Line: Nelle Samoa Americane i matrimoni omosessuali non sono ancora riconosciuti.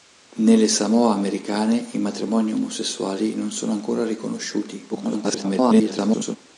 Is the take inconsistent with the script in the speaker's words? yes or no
yes